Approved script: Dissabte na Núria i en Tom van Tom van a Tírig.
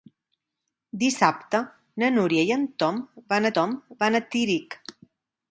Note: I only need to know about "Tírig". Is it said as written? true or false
true